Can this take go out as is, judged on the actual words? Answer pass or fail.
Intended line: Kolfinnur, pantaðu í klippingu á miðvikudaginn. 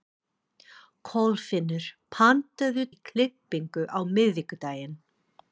pass